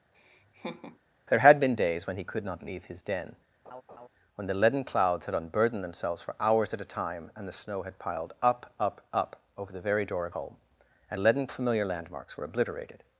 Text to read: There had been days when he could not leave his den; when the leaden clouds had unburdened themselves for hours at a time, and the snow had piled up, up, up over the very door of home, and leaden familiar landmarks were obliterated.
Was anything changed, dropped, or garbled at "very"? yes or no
no